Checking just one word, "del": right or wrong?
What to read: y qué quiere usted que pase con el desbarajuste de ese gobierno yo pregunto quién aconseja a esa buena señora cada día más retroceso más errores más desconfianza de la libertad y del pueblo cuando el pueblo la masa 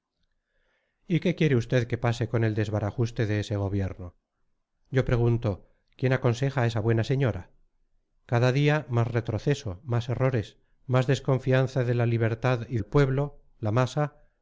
wrong